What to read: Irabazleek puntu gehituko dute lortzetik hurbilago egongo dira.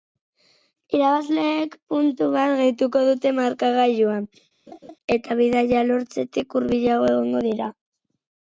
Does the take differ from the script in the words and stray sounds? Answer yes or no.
yes